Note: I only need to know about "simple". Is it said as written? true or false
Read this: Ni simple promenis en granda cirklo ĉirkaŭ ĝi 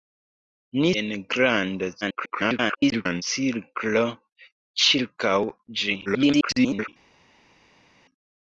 false